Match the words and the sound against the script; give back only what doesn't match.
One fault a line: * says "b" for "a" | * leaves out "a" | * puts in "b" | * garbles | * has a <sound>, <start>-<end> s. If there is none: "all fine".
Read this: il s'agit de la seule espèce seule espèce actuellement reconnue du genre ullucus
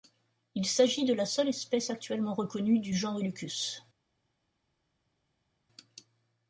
* leaves out "seule espèce"